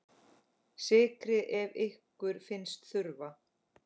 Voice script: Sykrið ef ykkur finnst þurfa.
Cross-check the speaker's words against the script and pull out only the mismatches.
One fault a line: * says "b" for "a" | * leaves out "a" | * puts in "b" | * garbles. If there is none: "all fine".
all fine